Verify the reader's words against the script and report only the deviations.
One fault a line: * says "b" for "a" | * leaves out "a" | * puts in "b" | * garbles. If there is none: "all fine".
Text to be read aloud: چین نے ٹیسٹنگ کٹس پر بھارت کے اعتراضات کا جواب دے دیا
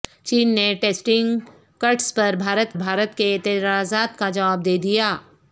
* puts in "بھارت"